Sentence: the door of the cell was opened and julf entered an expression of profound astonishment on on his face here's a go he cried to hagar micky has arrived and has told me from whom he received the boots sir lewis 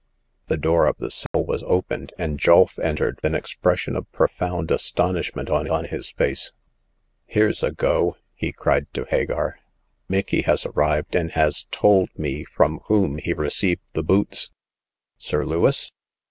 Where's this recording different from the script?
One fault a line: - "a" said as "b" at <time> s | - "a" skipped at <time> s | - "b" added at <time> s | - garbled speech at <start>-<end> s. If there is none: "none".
none